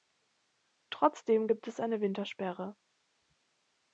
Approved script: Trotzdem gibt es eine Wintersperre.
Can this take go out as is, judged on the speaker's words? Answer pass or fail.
pass